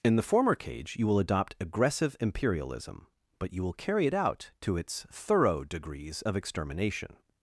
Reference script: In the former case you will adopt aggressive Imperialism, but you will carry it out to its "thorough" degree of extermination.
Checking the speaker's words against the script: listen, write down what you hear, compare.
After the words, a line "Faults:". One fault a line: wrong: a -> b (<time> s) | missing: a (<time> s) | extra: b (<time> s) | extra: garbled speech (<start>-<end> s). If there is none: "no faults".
In the former cage you will adopt aggressive Imperialism, but you will carry it out to its "thorough" degrees of extermination.
Faults:
wrong: case -> cage (0.6 s)
wrong: degree -> degrees (5.6 s)